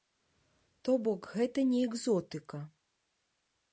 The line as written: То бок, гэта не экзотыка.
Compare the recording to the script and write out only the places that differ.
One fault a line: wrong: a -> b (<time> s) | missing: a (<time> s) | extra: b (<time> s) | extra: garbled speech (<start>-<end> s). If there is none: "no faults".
no faults